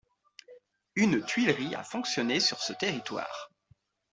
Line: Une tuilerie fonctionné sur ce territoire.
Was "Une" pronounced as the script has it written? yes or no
yes